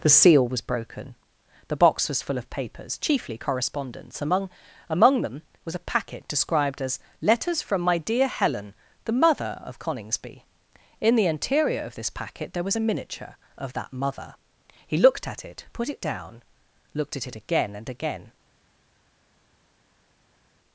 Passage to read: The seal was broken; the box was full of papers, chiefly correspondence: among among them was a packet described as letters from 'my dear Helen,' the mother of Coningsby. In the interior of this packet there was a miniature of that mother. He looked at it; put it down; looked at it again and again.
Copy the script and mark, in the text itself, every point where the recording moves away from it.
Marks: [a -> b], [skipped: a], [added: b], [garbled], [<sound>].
The seal was broken; the box was full of papers, chiefly correspondence: among among them was a packet described as letters from 'my dear Helen,' the mother of Coningsby. In the interior of this packet there was a miniature of that mother. He looked at it; put it down; looked at it again and again.